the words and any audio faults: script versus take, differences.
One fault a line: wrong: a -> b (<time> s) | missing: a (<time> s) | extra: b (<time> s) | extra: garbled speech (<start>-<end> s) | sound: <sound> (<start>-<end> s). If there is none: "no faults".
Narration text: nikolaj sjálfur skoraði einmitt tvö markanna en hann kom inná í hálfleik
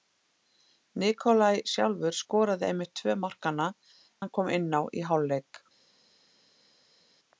missing: en (3.7 s)